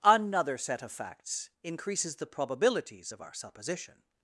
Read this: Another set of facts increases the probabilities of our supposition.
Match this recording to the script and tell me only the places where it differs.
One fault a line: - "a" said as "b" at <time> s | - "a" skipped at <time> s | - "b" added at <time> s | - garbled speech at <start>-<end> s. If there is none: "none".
none